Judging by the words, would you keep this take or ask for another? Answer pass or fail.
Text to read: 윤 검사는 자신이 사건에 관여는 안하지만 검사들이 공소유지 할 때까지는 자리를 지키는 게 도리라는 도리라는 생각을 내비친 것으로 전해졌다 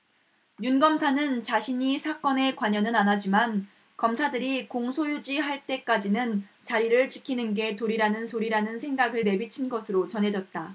pass